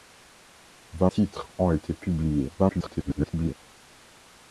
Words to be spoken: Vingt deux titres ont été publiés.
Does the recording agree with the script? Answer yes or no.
no